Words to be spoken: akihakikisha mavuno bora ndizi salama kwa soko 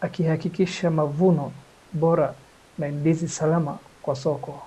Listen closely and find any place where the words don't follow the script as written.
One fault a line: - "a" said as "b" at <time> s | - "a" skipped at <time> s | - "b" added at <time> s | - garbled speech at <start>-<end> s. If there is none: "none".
- "na" added at 2.8 s